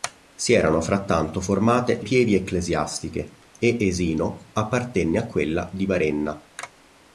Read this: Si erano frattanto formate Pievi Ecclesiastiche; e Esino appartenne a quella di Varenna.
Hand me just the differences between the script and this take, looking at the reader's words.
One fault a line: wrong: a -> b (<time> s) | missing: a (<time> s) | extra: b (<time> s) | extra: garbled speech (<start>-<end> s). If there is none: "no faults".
no faults